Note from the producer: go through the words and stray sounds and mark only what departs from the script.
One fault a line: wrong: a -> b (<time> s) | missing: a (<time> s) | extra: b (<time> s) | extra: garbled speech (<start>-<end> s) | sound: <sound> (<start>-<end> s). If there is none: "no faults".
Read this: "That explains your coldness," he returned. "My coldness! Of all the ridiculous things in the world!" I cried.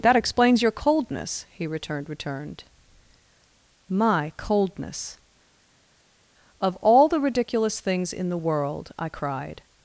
extra: returned (2.1 s)